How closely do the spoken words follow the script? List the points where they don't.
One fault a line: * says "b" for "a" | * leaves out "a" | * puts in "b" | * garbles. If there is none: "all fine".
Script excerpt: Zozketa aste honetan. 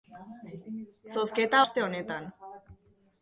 all fine